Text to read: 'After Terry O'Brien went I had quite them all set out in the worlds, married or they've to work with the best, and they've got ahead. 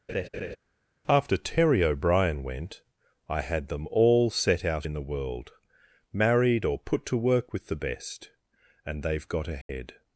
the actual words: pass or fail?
fail